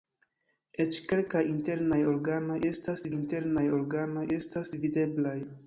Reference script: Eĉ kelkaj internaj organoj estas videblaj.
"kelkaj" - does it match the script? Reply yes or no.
yes